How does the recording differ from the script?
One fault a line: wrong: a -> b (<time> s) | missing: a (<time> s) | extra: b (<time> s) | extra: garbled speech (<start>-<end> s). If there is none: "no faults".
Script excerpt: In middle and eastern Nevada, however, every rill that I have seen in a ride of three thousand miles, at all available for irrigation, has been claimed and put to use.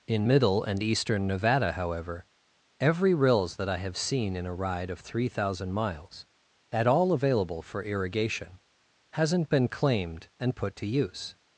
wrong: rill -> rills (3.1 s)
wrong: has -> hasn't (9.1 s)